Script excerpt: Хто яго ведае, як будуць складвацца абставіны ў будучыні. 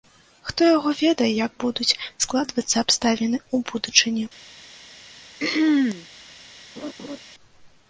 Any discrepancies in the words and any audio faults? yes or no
yes